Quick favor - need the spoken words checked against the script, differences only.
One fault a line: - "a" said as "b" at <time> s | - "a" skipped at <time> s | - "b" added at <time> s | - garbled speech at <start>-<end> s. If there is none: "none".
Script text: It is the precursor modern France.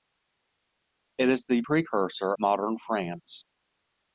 none